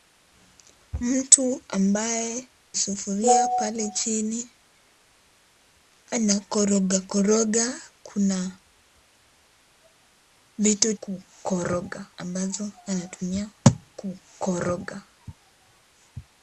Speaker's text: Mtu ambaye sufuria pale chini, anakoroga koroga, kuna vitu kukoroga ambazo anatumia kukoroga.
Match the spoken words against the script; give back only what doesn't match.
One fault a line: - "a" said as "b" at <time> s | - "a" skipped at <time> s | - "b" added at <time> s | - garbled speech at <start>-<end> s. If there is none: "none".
none